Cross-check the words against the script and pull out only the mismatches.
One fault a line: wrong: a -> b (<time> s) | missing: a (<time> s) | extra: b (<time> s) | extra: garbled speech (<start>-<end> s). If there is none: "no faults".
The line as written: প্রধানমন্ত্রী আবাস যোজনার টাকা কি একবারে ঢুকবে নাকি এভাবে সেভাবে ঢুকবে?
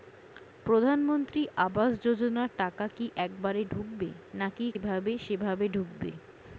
no faults